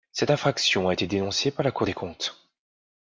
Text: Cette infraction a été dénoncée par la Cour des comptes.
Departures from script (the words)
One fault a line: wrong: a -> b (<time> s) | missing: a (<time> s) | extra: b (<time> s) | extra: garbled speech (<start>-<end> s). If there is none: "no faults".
no faults